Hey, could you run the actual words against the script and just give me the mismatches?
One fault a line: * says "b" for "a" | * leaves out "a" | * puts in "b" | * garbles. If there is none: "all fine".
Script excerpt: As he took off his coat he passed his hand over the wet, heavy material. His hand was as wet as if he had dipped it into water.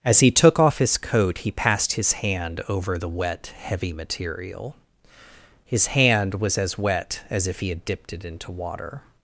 all fine